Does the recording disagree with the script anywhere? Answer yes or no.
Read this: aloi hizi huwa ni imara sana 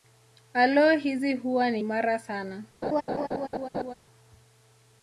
no